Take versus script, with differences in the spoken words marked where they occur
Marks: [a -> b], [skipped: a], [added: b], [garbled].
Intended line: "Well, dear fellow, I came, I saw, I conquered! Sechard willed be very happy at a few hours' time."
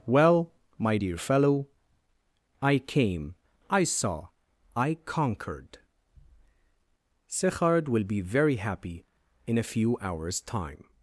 "Well, [added: my] dear fellow, I came, I saw, I conquered! Sechard [willed -> will] be very happy [at -> in] a few hours' time."